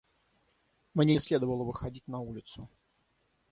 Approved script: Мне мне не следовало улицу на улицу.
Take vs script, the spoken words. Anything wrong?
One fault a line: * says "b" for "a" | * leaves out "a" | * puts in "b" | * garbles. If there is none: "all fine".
* leaves out "мне"
* says "выходить" for "улицу"